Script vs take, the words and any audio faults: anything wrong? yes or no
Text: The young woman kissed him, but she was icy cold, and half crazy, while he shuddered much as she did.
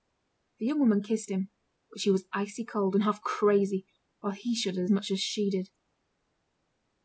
no